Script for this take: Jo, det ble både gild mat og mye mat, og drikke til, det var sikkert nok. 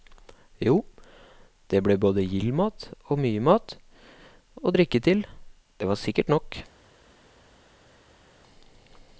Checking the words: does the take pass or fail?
pass